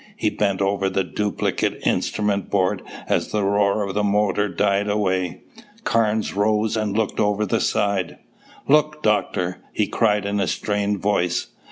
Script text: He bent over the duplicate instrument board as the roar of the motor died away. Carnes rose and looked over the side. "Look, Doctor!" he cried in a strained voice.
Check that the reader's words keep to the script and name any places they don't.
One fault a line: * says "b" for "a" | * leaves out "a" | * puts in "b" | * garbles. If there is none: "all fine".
all fine